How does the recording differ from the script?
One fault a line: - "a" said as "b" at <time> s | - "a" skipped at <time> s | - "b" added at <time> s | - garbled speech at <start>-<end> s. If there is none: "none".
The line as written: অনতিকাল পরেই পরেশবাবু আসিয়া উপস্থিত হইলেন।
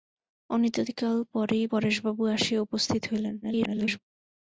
- garbled speech at 3.4-4.0 s